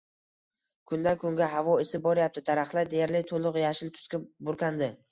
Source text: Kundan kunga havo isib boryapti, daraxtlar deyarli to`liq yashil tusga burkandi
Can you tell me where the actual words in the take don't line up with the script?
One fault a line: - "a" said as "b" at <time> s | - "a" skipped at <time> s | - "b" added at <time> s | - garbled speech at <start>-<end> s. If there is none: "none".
none